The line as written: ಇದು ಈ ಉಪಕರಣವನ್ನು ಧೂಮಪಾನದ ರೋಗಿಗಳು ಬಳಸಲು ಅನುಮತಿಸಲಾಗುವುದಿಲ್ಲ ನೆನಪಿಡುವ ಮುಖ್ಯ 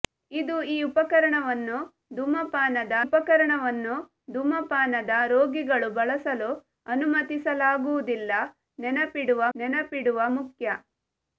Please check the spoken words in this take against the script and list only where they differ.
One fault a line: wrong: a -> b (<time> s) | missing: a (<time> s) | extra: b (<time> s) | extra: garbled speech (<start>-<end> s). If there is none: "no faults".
extra: ಉಪಕರಣವನ್ನು ಧೂಮಪಾನದ (3.0 s)
extra: ನೆನಪಿಡುವ (9.5 s)